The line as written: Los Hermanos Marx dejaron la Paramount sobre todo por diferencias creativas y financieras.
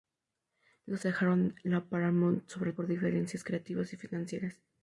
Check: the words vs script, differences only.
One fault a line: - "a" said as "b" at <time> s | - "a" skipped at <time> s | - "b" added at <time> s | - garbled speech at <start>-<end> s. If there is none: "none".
- "Hermanos Marx" skipped at 1.1 s
- "todo" skipped at 2.7 s